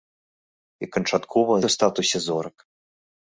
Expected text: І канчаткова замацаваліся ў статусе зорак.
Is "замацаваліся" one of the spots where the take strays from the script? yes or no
yes